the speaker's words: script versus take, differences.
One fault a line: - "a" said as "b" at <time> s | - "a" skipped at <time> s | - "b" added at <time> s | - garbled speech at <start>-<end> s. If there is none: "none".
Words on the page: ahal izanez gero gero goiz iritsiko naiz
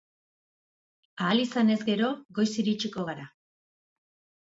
- "gero" skipped at 2.1 s
- "naiz" said as "gara" at 3.1 s